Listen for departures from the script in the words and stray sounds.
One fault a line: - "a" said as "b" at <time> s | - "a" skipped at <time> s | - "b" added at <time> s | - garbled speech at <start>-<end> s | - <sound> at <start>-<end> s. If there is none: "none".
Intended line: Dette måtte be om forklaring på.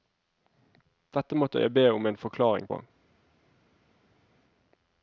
- "jeg" added at 1.6 s
- "en" added at 2.0 s